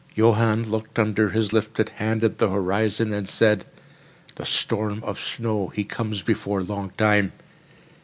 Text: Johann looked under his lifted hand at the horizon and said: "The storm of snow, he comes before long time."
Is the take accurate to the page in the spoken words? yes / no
yes